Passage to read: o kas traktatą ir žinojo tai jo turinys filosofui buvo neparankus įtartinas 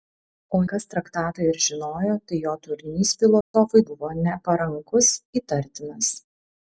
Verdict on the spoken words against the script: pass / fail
pass